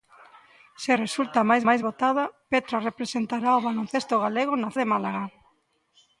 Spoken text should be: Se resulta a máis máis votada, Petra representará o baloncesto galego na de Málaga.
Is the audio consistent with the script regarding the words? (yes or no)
yes